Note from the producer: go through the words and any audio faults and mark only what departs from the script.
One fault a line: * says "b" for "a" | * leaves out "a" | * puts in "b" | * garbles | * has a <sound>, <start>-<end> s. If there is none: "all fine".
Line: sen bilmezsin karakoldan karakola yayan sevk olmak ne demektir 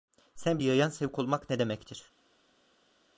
* leaves out "bilmezsin karakoldan karakola"